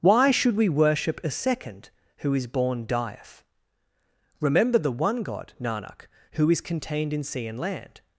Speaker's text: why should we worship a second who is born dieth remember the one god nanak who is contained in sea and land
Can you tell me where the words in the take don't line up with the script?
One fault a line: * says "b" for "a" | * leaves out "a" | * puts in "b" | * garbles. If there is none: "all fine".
all fine